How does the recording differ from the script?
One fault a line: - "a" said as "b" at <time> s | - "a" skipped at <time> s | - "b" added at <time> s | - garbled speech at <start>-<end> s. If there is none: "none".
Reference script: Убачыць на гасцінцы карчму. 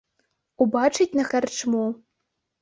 - "гасцінцы" skipped at 1.2 s